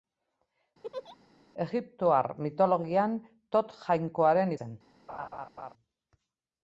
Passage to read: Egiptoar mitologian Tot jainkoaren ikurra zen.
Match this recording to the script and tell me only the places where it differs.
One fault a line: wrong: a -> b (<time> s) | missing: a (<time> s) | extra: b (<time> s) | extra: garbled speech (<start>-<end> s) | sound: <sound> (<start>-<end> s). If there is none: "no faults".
sound: laugh (0.8-1.2 s)
missing: ikurra (4.5 s)
sound: laugh (5.1-5.7 s)